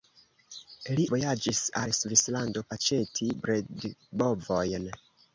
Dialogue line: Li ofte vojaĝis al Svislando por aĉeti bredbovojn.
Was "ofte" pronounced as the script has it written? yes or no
no